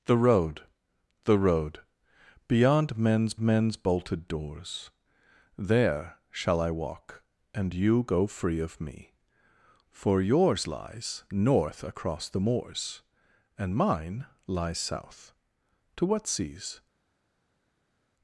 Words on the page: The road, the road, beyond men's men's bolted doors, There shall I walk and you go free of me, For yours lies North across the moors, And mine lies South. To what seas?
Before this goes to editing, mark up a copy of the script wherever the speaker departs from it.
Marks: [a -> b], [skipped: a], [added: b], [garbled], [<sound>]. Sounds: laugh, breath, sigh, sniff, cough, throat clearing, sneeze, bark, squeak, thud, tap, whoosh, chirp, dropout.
The road, the road, beyond men's men's bolted doors, There shall I walk and you go free of me, For yours lies North across the moors, And mine lies South. To what seas?